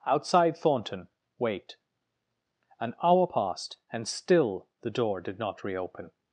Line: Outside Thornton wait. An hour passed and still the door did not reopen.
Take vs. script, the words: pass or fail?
pass